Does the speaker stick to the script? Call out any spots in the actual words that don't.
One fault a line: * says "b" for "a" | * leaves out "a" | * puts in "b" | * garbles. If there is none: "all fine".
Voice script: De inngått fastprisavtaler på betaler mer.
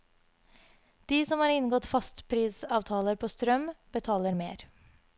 * puts in "som har"
* puts in "strøm"